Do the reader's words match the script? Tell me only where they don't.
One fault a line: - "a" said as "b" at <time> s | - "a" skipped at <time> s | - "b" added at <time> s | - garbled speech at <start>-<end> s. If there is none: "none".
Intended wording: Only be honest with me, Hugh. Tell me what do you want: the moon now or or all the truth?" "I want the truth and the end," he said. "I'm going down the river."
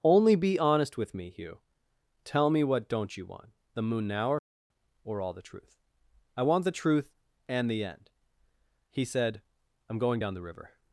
- "do" said as "don't" at 2.9 s